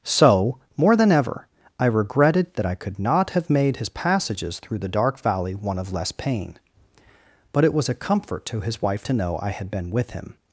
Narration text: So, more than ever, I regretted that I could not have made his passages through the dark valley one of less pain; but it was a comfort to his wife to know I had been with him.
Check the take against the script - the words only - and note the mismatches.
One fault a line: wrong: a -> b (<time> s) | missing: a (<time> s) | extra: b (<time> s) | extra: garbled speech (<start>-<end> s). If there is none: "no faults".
no faults